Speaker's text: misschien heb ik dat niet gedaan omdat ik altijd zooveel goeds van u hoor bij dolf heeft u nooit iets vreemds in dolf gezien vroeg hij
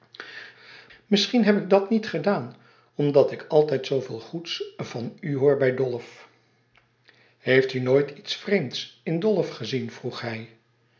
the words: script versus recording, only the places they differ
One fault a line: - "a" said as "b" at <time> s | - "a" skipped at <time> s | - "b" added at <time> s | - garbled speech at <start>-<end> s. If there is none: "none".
none